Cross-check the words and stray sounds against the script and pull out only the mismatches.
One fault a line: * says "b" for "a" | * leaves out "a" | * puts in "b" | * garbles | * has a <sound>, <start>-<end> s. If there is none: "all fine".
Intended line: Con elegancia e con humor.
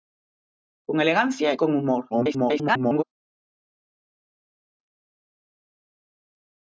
* garbles